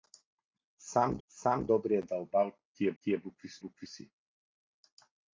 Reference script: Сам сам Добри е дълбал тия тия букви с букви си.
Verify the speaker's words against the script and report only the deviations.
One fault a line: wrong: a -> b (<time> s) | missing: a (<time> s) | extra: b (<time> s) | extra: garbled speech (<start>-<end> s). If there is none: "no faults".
no faults